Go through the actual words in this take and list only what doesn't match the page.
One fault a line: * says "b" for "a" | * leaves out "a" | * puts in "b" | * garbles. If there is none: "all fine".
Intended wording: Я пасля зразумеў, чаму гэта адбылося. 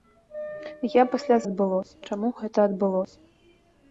* says "адбылося" for "зразумеў"